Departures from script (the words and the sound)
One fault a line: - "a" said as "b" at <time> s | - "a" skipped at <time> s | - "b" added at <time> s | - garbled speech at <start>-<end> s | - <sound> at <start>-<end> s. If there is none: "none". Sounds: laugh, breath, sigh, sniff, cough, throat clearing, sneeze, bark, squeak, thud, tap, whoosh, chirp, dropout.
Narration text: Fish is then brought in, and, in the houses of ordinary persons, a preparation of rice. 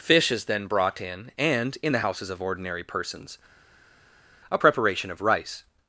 none